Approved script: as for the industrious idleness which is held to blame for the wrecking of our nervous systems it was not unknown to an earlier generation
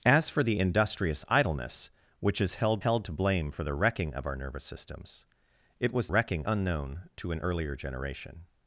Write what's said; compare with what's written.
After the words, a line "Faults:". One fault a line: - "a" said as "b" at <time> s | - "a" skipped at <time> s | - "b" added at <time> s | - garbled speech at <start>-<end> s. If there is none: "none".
as for the industrious idleness which is held held to blame for the wrecking of our nervous systems it was wrecking unknown to an earlier generation
Faults:
- "held" added at 2.8 s
- "not" said as "wrecking" at 6.1 s